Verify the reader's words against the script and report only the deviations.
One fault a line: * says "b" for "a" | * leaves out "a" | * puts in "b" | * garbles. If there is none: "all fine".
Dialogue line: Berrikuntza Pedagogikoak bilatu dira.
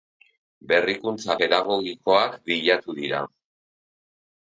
all fine